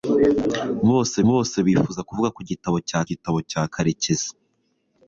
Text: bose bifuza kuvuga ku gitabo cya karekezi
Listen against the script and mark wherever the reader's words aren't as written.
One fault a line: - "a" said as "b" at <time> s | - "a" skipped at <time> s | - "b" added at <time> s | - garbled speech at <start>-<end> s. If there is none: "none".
- "bose" added at 1.3 s
- "gitabo cya" added at 3.1 s